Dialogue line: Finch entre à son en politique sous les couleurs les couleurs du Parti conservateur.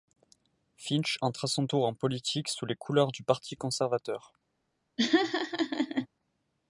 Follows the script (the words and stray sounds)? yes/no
no